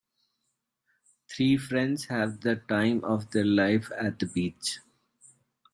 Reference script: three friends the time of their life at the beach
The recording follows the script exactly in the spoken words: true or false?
false